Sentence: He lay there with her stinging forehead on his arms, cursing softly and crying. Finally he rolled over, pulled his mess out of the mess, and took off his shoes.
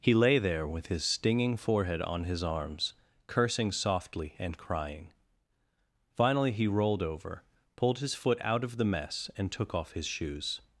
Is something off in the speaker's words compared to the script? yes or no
yes